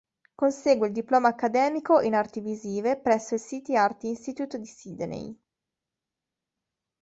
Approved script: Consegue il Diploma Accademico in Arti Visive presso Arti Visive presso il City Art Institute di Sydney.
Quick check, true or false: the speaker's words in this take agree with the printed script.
false